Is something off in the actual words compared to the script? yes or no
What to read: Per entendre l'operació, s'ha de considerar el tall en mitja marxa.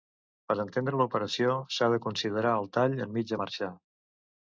no